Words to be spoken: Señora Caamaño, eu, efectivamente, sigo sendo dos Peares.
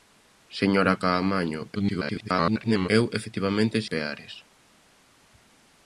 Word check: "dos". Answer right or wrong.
wrong